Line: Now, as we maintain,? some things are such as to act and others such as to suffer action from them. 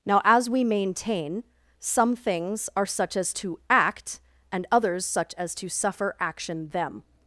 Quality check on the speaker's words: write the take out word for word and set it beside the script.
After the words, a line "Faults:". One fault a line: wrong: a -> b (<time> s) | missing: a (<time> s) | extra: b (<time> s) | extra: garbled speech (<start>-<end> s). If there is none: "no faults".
Now, as we maintain,? some things are such as to act and others such as to suffer action them.
Faults:
missing: from (6.7 s)